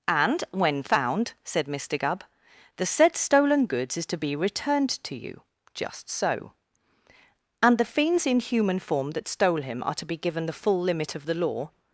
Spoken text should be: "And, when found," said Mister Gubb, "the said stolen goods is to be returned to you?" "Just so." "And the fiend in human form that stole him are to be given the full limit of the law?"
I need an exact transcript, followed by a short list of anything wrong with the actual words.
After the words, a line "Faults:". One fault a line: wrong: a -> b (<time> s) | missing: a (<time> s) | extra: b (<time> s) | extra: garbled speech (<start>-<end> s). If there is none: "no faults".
"And, when found," said Mister Gubb, "the said stolen goods is to be returned to you?" "Just so." "And the fiends in human form that stole him are to be given the full limit of the law?"
Faults:
wrong: fiend -> fiends (7.8 s)